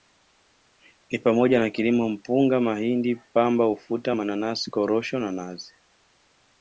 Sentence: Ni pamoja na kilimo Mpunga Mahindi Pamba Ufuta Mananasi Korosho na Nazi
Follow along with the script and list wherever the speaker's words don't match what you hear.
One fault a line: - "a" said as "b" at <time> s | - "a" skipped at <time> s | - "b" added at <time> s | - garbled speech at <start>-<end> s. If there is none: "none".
none